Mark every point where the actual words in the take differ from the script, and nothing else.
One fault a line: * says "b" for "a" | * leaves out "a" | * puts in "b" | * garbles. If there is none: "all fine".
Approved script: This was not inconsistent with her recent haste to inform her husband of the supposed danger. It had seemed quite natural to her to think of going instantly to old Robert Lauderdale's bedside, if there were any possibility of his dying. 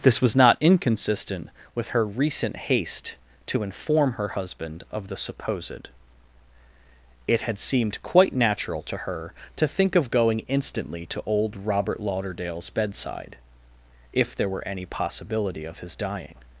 * leaves out "danger"